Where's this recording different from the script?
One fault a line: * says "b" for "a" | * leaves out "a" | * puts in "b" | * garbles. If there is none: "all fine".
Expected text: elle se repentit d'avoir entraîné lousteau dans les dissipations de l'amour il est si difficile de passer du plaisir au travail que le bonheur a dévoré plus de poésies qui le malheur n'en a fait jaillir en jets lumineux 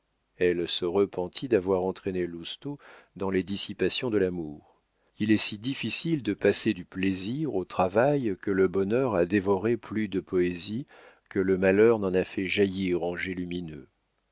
* says "que" for "qui"